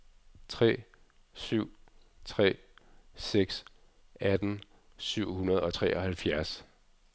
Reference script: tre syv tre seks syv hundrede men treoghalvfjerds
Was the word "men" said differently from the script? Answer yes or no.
yes